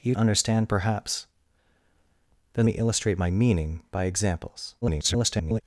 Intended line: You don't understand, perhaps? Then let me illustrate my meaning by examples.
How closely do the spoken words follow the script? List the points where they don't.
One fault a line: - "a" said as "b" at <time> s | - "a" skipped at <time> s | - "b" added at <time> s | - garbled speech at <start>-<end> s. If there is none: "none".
- "don't" skipped at 0.1 s
- "let" skipped at 2.7 s
- garbled speech at 4.8-5.6 s